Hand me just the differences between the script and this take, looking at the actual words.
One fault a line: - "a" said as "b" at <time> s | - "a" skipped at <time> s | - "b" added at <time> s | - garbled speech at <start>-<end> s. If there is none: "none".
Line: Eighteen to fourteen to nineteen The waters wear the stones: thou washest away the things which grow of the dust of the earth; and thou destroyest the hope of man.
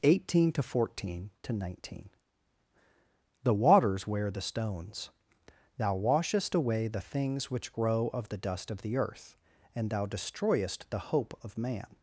none